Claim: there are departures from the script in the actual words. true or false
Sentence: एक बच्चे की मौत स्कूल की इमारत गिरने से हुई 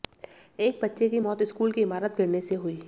false